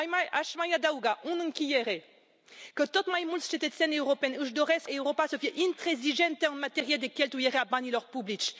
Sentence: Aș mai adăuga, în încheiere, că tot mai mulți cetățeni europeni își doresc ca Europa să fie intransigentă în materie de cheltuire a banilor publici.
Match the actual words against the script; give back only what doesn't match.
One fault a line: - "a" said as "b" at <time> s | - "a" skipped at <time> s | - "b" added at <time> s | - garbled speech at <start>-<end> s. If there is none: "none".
- "ca" skipped at 4.9 s